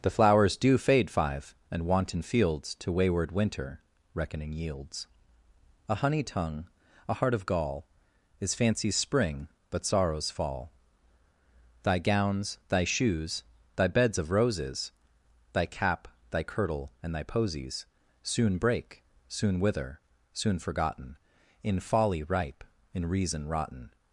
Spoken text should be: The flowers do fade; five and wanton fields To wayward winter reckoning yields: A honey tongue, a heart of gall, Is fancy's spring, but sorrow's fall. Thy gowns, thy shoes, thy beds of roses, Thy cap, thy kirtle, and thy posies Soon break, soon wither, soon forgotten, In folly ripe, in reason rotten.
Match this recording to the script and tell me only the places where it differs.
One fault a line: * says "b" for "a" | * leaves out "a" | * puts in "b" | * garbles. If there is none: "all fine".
all fine